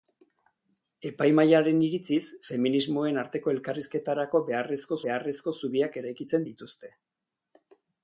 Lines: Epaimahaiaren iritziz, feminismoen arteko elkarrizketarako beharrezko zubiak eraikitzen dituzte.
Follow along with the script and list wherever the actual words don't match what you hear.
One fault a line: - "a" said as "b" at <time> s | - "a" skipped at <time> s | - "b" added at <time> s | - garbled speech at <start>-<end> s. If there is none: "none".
- "beharrezko" added at 5.0 s